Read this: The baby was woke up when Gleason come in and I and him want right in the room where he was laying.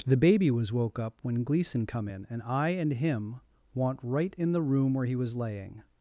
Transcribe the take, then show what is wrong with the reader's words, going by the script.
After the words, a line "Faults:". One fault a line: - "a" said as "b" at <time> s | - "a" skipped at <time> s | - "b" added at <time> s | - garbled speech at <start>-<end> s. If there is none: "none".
The baby was woke up when Gleason come in and I and him want right in the room where he was laying.
Faults:
none